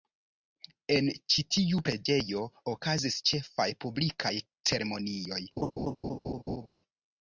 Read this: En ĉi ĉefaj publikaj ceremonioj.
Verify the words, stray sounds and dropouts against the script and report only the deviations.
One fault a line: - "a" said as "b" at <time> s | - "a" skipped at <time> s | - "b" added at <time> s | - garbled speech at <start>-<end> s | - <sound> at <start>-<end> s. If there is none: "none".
- "tiu preĝejo okazis" added at 1.6 s
- laugh at 5.6-6.7 s